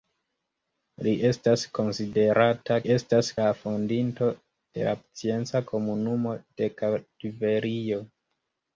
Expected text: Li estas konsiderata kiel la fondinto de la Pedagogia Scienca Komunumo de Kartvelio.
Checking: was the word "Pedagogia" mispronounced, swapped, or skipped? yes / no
yes